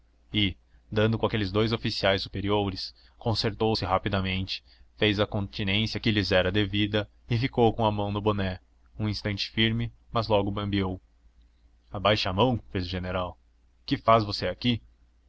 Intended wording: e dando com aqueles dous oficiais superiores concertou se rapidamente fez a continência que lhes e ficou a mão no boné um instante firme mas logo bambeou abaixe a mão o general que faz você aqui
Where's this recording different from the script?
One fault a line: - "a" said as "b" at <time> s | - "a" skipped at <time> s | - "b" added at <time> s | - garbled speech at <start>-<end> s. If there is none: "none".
- "era devida" added at 6.3 s
- "com" added at 7.7 s
- "fez" added at 12.7 s